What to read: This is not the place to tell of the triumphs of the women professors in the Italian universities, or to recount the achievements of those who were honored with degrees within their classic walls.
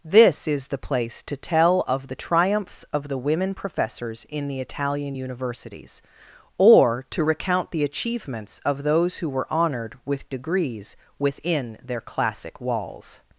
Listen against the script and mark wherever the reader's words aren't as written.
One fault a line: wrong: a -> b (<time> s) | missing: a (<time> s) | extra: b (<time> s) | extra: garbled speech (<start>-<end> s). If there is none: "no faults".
missing: not (0.7 s)